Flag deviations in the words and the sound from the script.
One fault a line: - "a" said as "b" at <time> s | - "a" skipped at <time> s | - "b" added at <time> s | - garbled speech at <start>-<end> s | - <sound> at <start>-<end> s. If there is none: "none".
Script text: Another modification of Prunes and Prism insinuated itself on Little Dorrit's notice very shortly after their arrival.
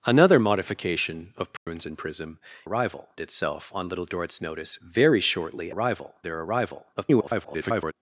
- dropout at 1.6-1.7 s
- "insinuated" said as "arrival" at 2.6 s
- "after" said as "arrival" at 5.7 s
- garbled speech at 7.0-7.9 s